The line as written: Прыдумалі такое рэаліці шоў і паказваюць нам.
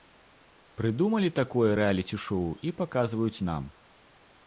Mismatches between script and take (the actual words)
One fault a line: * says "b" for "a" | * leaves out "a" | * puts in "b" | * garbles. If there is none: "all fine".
all fine